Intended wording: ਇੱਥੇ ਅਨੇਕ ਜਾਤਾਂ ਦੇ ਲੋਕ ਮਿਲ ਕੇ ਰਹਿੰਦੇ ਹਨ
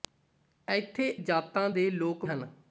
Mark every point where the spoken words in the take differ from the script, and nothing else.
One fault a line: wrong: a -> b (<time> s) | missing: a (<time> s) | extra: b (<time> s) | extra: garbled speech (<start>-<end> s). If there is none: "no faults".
missing: ਅਨੇਕ (1.1 s)
missing: ਮਿਲ ਕੇ ਰਹਿੰਦੇ (2.3 s)